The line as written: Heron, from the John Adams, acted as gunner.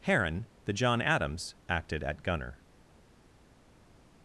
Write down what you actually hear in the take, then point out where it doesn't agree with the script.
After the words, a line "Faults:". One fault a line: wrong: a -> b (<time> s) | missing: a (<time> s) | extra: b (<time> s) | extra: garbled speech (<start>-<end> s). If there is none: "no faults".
Heron, the John Adams, acted at gunner.
Faults:
missing: from (0.5 s)
wrong: as -> at (2.0 s)